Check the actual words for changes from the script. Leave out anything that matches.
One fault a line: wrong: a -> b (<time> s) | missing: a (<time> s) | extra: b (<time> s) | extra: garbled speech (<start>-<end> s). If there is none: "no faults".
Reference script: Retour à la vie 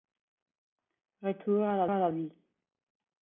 extra: à la (1.8 s)